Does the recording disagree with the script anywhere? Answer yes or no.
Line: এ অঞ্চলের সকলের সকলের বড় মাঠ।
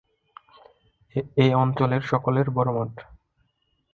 yes